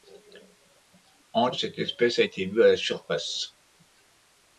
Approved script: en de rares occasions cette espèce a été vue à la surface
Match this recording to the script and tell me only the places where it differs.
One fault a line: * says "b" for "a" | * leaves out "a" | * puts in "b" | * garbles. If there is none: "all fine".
* leaves out "de rares occasions"